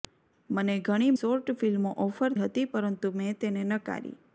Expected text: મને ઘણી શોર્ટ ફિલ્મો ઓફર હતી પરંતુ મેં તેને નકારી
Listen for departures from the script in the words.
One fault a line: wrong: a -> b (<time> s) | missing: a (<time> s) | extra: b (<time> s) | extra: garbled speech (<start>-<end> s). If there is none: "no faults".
no faults